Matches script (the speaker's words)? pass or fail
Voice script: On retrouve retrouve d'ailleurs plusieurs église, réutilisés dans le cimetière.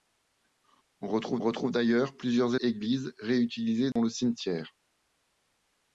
pass